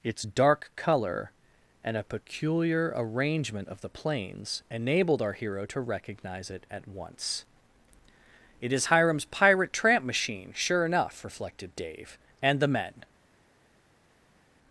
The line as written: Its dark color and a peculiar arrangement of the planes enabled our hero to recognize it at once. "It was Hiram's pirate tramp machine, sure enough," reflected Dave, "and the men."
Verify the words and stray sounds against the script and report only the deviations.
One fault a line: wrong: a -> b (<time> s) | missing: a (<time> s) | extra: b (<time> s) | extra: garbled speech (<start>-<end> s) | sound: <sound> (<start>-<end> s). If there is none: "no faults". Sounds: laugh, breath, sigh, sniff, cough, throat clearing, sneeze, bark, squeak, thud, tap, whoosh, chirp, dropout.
wrong: was -> is (8.7 s)